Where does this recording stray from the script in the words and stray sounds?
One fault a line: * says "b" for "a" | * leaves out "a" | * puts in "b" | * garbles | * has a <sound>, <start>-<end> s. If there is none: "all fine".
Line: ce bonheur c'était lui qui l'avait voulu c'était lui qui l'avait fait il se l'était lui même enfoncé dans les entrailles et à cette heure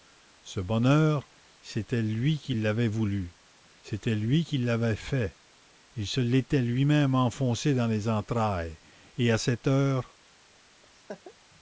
* has a laugh, 10.8-11.3 s